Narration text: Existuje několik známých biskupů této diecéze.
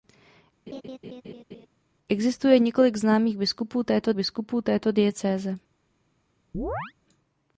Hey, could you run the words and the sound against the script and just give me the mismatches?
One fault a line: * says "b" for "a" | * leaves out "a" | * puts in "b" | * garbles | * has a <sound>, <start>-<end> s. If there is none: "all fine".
* has a laugh, 0.7-1.7 s
* puts in "biskupů této"
* has a chirp, 6.5-6.9 s